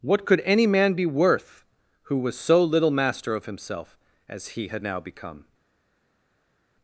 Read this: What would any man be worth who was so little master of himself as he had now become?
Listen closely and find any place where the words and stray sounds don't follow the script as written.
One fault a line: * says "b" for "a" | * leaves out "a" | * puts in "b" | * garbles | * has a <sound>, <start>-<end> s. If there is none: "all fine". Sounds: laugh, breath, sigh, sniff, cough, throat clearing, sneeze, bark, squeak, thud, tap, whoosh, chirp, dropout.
* says "could" for "would"